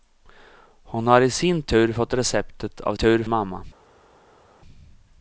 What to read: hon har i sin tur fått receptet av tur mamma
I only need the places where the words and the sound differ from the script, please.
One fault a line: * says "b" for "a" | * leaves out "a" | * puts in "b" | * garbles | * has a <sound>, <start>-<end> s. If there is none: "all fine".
all fine